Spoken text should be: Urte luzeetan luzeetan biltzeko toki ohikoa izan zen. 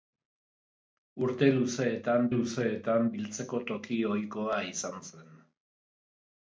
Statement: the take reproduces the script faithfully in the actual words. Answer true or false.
true